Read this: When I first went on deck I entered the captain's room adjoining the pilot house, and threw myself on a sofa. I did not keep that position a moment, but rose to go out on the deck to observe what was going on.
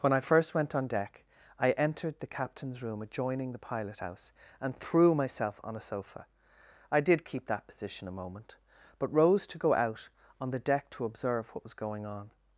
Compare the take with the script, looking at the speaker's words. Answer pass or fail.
fail